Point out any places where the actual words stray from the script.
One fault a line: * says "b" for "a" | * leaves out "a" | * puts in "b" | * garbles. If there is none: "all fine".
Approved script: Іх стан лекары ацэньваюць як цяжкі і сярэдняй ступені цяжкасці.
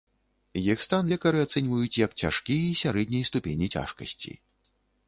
all fine